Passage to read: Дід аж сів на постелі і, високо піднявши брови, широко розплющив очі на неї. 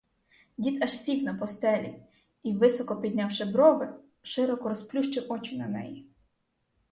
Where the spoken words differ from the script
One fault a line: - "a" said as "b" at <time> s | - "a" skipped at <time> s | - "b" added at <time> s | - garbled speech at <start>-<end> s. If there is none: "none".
none